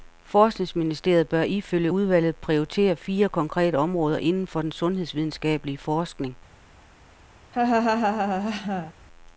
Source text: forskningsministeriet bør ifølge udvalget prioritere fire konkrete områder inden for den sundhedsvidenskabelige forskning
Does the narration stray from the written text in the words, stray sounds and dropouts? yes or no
yes